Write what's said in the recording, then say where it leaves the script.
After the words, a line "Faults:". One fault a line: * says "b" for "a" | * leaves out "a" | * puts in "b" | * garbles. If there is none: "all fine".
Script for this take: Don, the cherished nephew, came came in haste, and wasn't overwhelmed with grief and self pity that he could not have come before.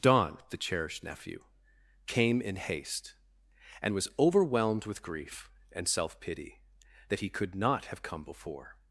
Don, the cherished nephew, came in haste, and was overwhelmed with grief and self pity that he could not have come before.
Faults:
* leaves out "came"
* says "was" for "wasn't"